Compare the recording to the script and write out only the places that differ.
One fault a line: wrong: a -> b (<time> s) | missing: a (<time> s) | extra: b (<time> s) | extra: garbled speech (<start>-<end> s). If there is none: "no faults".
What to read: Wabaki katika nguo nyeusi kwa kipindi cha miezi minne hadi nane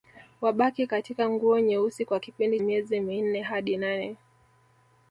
missing: cha (2.6 s)